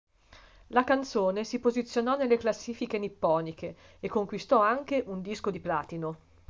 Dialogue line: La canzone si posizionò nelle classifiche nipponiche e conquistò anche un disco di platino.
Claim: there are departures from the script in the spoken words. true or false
false